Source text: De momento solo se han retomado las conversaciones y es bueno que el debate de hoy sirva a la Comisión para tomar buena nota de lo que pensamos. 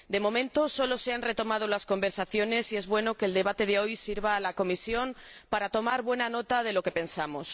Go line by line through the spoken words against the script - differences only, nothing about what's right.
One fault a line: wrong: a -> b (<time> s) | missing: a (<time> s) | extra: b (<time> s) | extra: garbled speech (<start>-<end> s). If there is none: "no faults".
no faults